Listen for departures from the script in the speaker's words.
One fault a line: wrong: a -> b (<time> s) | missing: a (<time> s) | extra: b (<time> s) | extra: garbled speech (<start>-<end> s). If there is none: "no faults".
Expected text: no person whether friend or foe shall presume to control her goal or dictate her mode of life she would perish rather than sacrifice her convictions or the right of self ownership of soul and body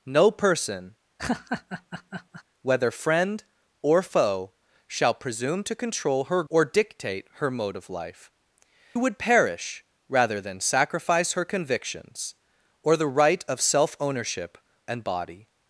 missing: goal (6.4 s)
missing: she (8.3 s)
missing: of soul (14.6 s)